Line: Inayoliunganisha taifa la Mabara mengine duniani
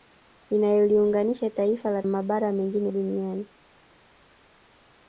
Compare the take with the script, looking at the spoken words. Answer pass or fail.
pass